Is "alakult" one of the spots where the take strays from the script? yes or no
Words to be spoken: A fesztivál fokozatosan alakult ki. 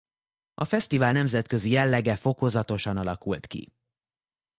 no